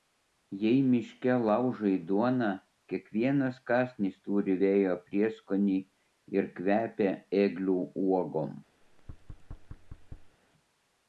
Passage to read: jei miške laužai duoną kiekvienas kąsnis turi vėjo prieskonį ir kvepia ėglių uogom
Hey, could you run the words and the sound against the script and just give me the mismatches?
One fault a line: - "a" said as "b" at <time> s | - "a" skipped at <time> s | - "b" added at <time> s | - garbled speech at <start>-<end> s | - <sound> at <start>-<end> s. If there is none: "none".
- thud at 8.8-10.4 s